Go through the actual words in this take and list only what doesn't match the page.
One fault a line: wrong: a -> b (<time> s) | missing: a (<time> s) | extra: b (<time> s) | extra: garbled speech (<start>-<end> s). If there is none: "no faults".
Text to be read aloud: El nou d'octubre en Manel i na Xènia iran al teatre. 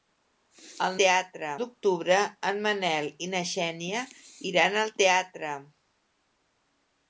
wrong: nou -> teatre (1.0 s)